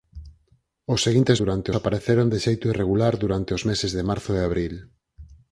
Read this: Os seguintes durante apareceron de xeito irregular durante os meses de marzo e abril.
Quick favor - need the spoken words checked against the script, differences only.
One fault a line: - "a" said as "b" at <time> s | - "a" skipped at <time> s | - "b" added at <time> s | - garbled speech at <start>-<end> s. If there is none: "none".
none